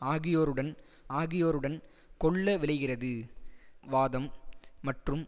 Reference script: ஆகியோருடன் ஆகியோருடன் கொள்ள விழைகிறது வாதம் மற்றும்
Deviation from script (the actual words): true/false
false